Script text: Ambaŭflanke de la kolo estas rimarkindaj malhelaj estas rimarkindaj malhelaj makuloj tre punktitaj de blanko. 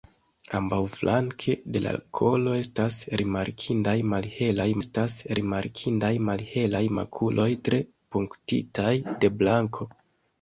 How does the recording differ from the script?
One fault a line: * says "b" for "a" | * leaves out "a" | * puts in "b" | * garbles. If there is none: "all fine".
all fine